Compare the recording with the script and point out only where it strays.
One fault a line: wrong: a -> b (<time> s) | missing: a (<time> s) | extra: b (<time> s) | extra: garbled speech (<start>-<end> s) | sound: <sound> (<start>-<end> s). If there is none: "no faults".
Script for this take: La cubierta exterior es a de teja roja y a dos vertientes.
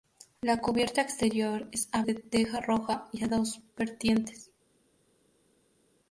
no faults